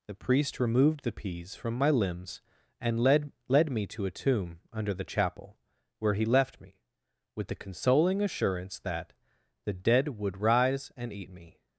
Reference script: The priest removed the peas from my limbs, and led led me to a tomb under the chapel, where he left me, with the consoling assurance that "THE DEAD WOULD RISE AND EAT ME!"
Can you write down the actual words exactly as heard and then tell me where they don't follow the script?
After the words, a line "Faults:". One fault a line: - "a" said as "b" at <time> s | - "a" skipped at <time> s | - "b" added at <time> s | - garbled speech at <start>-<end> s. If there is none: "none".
The priest removed the peas from my limbs, and led led me to a tomb under the chapel, where he left me, with the consoling assurance that "THE DEAD WOULD RISE AND EAT ME!"
Faults:
none